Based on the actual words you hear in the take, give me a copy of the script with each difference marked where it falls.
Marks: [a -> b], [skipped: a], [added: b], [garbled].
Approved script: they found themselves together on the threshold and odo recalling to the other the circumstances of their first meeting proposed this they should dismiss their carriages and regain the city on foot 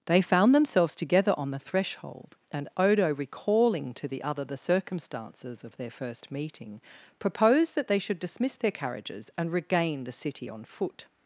they found themselves together on the threshold and odo recalling to the other the circumstances of their first meeting proposed [this -> that] they should dismiss their carriages and regain the city on foot